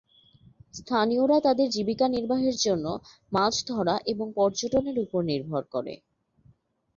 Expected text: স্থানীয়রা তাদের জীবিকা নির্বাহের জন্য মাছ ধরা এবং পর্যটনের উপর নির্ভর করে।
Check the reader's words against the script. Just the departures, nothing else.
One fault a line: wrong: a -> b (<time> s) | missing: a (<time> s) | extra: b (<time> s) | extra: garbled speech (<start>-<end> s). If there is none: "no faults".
no faults